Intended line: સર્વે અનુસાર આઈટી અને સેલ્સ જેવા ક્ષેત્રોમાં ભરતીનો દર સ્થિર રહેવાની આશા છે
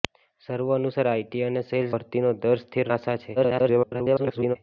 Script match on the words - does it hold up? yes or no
no